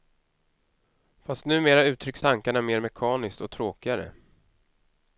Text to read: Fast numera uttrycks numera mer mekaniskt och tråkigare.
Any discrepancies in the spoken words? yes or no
yes